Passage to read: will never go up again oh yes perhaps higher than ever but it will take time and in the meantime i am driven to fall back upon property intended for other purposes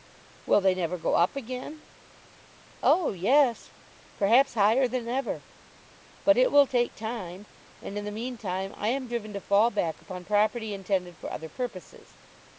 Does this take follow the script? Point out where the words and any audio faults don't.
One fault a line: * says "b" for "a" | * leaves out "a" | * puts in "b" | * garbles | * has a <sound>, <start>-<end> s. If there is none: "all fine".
* puts in "they"